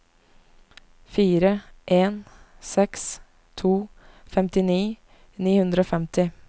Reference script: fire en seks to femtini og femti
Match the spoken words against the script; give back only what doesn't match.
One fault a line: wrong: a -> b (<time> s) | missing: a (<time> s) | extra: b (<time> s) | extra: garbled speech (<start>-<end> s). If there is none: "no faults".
extra: ni hundre (5.4 s)